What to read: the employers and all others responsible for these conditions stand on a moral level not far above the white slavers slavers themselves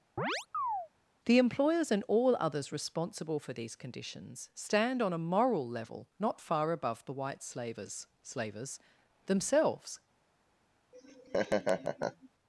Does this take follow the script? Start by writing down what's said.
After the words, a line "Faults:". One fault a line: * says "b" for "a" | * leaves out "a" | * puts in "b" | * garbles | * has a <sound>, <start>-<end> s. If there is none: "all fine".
the employers and all others responsible for these conditions stand on a moral level not far above the white slavers slavers themselves
Faults:
* has a chirp, 0.2-0.9 s
* has a laugh, 10.9-12.3 s